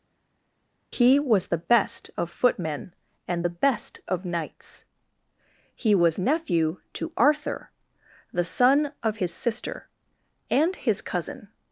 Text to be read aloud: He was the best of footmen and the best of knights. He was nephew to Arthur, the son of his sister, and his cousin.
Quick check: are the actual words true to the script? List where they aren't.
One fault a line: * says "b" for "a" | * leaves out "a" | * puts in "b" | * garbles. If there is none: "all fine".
all fine